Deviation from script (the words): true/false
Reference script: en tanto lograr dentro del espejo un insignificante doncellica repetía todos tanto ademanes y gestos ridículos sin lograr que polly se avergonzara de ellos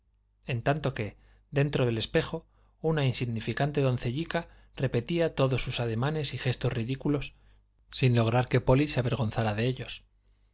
true